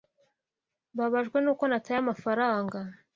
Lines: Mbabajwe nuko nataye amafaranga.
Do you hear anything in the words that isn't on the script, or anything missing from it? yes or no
no